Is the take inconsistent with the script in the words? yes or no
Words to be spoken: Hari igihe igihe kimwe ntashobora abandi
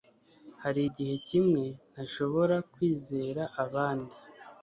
yes